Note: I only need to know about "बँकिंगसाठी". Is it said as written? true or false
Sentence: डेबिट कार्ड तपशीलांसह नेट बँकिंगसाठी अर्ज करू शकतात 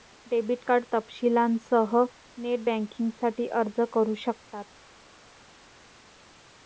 true